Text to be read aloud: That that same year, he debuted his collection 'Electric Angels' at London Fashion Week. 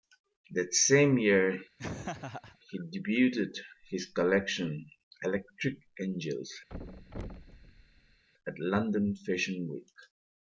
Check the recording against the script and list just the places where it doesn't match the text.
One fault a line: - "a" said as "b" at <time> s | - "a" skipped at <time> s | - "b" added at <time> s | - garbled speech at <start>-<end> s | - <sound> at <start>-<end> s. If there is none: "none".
- "that" skipped at 0.7 s
- laugh at 1.8-2.6 s
- thud at 6.7-8.2 s